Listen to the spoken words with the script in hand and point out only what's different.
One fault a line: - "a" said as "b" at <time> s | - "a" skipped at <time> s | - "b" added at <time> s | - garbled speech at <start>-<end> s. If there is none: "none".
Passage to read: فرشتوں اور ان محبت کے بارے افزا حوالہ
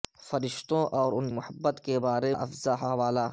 none